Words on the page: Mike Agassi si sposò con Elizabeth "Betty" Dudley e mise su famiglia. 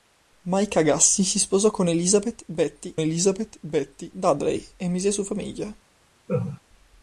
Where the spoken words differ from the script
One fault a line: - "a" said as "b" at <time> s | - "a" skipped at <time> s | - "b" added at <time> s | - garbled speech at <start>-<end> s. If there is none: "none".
- "Elizabeth Betty" added at 3.0 s